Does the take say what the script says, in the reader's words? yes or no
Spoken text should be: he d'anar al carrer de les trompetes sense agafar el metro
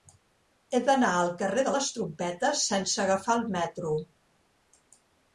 yes